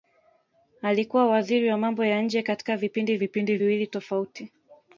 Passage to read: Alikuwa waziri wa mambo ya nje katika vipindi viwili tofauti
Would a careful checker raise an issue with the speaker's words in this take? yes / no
yes